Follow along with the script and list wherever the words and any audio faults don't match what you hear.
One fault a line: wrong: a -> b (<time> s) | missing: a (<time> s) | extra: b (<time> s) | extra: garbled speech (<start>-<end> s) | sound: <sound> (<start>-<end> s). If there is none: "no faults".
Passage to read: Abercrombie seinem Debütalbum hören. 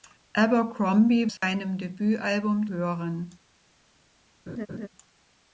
sound: dropout (1.4-1.4 s)
sound: laugh (4.5-4.9 s)